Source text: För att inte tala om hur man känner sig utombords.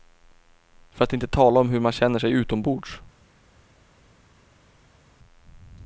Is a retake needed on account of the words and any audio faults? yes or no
no